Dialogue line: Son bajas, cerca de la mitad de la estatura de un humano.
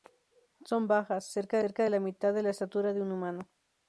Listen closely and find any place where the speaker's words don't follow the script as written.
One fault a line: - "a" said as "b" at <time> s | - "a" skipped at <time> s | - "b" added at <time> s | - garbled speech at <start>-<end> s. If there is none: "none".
- "cerca" added at 1.6 s